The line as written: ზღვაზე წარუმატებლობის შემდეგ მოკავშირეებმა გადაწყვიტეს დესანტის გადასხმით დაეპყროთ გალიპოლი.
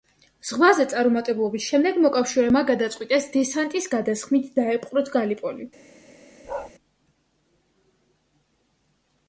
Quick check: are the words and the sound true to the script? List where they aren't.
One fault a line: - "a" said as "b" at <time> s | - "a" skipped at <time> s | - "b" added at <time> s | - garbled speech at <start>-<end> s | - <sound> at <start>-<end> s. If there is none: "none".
- bark at 6.4-6.7 s